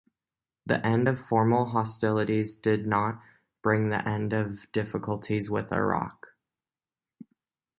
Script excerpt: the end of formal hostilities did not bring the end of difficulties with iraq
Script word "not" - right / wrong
right